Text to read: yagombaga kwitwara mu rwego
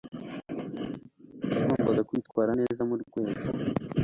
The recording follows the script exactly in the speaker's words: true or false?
false